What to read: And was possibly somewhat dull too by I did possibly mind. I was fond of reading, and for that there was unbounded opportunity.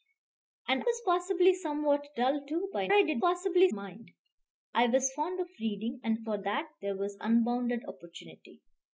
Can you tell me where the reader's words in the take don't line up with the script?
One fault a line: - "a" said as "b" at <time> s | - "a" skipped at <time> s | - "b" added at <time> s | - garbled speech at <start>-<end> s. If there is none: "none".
none